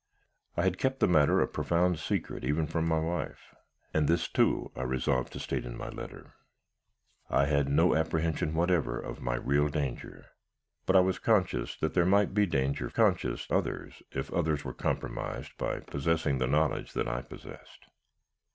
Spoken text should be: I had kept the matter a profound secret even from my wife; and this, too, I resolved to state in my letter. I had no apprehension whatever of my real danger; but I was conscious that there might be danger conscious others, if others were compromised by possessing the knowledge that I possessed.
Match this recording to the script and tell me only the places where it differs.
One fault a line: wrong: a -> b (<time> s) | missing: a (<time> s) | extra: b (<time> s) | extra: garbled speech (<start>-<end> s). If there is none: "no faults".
no faults